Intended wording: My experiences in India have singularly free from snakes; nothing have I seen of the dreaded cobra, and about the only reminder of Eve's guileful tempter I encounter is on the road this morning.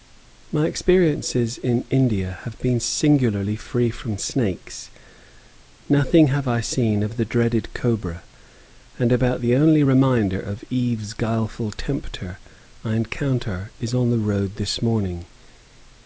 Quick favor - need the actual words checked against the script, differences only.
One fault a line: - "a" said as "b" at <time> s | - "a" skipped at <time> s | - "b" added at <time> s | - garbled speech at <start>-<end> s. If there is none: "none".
- "been" added at 2.6 s